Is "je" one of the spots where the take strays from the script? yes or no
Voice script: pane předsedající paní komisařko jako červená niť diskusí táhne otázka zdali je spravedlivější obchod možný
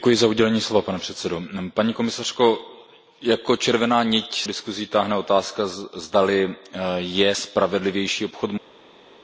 no